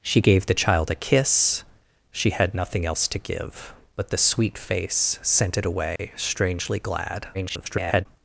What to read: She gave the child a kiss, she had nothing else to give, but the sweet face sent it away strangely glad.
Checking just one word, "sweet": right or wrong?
right